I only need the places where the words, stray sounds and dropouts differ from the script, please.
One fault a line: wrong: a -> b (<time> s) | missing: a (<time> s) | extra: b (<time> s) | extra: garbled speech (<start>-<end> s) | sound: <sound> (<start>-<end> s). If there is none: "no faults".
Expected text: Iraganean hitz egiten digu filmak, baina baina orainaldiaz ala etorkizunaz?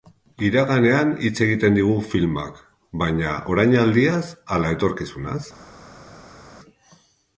missing: baina (3.4 s)